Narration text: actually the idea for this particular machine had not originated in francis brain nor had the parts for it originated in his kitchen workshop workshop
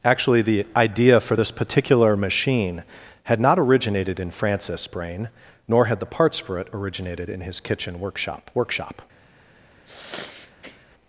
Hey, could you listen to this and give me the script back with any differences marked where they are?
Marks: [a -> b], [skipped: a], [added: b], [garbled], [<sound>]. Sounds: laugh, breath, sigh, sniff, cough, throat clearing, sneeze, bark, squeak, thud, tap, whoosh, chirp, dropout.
actually the idea for this particular machine had not originated in francis brain nor had the parts for it originated in his kitchen workshop workshop [sneeze]